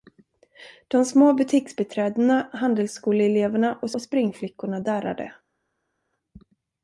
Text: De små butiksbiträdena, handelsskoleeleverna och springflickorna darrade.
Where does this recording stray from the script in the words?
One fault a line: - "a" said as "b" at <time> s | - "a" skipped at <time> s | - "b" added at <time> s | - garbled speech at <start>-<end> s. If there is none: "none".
- "och" added at 3.9 s